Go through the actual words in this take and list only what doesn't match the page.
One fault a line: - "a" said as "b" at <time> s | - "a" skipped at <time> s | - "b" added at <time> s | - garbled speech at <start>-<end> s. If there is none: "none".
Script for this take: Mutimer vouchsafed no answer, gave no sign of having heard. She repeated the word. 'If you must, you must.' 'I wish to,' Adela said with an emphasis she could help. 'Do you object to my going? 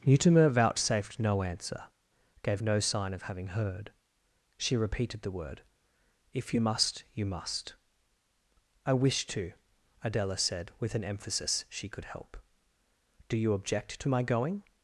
none